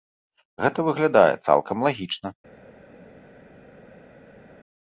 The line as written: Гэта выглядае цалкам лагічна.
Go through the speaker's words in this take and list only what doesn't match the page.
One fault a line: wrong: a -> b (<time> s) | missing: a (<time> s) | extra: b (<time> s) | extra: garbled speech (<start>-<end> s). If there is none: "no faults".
no faults